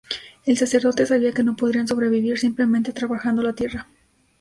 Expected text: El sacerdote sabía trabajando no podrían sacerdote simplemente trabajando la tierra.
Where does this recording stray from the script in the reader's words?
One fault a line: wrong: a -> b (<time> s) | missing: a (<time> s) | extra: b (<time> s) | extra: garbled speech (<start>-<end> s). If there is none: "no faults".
wrong: trabajando -> que (1.3 s)
wrong: sacerdote -> sobrevivir (1.9 s)